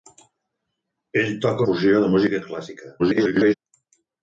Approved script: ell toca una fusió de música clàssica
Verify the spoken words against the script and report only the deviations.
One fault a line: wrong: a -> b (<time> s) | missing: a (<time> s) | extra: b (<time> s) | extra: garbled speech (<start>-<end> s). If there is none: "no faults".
missing: una (1.6 s)
extra: garbled speech (3.0-3.5 s)